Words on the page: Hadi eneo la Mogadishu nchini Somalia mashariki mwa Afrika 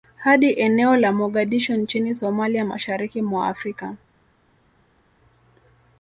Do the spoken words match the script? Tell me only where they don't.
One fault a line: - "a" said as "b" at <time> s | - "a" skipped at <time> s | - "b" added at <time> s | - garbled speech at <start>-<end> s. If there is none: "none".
none